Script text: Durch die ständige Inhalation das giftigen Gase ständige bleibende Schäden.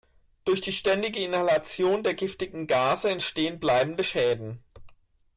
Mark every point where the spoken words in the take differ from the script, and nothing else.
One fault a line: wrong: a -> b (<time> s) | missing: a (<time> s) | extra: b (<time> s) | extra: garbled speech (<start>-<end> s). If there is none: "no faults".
wrong: das -> der (2.0 s)
wrong: ständige -> entstehen (3.1 s)